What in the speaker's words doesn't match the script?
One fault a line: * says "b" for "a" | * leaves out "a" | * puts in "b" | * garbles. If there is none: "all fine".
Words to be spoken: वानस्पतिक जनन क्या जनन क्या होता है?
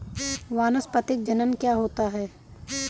* leaves out "जनन क्या"